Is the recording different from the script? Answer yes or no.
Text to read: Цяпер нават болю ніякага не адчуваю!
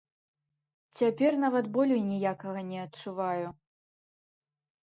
no